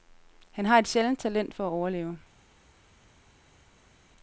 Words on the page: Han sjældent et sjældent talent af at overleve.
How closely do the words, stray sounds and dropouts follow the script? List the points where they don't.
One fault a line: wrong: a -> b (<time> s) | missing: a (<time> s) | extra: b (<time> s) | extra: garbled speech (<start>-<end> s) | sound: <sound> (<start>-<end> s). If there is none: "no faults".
wrong: sjældent -> har (0.7 s)
wrong: af -> for (1.5 s)